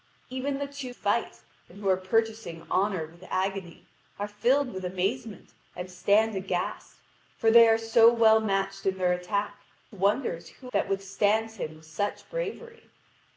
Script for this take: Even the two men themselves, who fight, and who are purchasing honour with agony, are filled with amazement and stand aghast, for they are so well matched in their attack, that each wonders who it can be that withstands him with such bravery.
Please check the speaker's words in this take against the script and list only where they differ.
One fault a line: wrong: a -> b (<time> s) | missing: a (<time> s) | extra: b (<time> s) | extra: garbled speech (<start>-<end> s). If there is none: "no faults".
missing: men themselves who (0.9 s)
missing: that each (9.6 s)
missing: it can be (10.7 s)